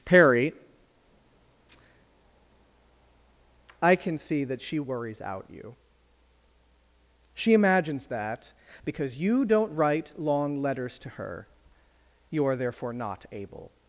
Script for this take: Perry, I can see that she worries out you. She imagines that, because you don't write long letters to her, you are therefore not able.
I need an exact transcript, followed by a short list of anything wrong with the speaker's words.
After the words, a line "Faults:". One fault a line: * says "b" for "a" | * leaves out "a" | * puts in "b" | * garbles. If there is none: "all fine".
Perry, I can see that she worries out you. She imagines that, because you don't write long letters to her, you are therefore not able.
Faults:
all fine